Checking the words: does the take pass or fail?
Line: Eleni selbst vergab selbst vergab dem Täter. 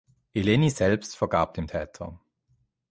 fail